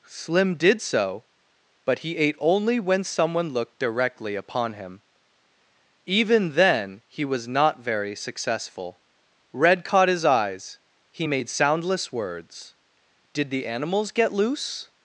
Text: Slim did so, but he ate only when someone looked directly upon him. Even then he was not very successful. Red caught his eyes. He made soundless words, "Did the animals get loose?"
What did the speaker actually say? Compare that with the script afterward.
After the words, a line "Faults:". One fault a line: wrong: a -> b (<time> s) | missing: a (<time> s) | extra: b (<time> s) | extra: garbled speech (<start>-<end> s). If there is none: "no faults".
Slim did so, but he ate only when someone looked directly upon him. Even then he was not very successful. Red caught his eyes. He made soundless words, "Did the animals get loose?"
Faults:
no faults